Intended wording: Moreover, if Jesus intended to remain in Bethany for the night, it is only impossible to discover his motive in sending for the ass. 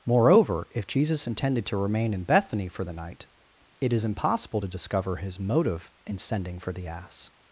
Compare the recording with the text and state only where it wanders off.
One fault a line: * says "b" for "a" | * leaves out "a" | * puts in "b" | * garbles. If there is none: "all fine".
* leaves out "only"